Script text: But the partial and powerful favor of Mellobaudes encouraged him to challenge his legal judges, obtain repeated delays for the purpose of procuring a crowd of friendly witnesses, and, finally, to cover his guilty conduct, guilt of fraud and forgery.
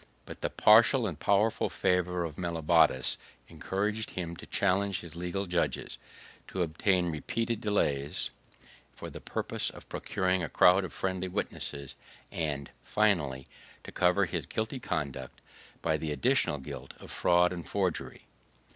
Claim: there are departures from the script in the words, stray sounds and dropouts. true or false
true